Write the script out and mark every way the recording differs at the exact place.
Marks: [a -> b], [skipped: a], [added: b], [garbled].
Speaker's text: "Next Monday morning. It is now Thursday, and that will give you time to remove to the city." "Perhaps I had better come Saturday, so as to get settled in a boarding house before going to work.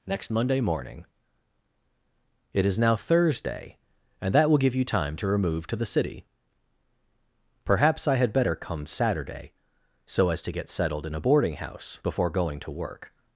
"Next Monday morning. It is now Thursday, and that will give you time to remove to the city." "Perhaps I had better come Saturday, so as to get settled in a boarding house before going to work.